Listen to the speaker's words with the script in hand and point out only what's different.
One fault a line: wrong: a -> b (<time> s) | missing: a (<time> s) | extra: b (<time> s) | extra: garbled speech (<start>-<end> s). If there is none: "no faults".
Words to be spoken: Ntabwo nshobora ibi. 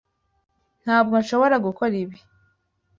extra: gukora (1.6 s)